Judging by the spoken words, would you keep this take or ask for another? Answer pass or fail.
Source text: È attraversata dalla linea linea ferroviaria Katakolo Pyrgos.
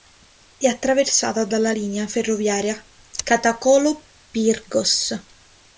fail